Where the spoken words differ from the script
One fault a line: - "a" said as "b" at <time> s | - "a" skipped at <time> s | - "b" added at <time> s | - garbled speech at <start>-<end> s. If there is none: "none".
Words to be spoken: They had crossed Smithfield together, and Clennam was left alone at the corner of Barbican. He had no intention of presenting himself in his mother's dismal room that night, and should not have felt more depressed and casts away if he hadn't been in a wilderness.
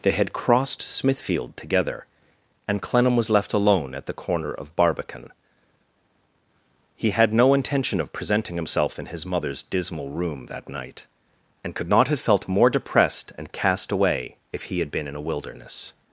- "should" said as "could" at 11.7 s
- "casts" said as "cast" at 13.5 s
- "hadn't" said as "had" at 14.8 s